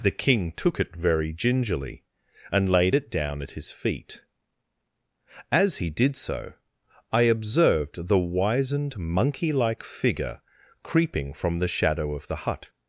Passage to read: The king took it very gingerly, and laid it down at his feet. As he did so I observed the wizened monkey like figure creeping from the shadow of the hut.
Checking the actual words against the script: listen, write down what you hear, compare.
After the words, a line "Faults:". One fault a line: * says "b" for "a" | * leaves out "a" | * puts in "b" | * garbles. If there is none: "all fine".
The king took it very gingerly, and laid it down at his feet. As he did so I observed the wizened monkey like figure creeping from the shadow of the hut.
Faults:
all fine